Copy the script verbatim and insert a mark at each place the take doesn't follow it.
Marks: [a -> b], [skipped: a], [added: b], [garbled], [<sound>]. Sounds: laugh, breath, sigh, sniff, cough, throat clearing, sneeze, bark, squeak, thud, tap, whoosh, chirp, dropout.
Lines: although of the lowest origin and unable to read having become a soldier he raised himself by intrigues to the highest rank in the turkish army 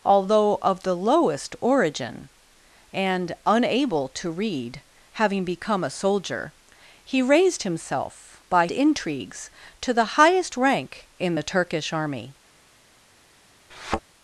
although of the lowest origin and unable to read having become a soldier he raised himself by intrigues to the highest rank in the turkish army [thud]